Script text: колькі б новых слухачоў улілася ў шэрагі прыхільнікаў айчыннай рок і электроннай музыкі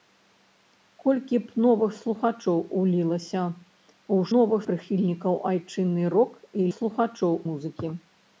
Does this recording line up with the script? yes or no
no